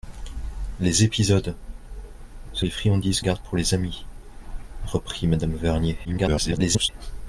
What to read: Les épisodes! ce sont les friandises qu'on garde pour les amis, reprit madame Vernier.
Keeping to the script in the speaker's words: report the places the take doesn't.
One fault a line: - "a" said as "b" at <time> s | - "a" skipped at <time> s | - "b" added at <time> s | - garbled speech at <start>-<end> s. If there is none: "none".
- "sont" skipped at 2.6 s
- "qu'on" skipped at 3.2 s
- garbled speech at 6.0-6.9 s